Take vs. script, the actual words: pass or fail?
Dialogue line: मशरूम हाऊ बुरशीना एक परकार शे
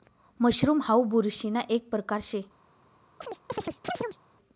pass